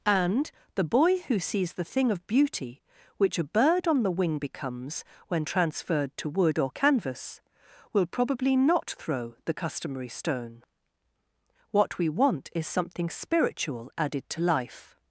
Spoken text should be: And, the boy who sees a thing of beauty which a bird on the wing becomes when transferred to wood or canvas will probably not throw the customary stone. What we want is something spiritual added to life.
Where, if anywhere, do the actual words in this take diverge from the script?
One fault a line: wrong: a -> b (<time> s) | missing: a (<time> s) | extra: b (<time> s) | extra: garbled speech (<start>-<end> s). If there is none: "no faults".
wrong: a -> the (1.7 s)